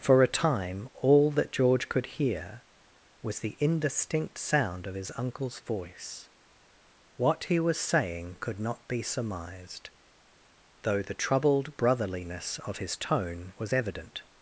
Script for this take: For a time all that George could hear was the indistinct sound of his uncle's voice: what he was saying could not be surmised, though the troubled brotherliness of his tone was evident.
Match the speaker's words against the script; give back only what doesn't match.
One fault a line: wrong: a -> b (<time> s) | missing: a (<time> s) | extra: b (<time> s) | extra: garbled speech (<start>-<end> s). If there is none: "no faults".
no faults